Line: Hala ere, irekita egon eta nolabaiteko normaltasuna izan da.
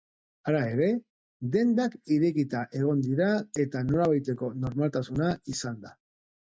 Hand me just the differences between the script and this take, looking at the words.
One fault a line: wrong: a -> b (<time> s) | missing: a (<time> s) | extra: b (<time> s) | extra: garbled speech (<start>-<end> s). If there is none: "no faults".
extra: dendak (1.6 s)
extra: dira (3.1 s)